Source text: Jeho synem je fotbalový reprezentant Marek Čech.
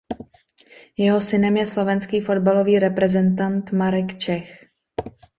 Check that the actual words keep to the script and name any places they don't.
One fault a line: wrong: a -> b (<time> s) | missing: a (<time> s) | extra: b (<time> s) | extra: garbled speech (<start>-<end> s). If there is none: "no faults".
extra: slovenský (1.6 s)